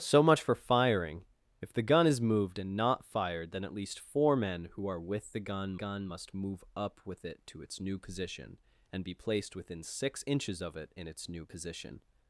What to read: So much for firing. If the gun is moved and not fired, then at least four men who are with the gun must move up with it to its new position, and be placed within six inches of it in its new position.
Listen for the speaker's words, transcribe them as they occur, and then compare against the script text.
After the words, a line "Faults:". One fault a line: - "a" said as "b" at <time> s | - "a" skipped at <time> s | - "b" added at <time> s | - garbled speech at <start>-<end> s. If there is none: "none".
So much for firing. If the gun is moved and not fired, then at least four men who are with the gun gun must move up with it to its new position, and be placed within six inches of it in its new position.
Faults:
- "gun" added at 5.7 s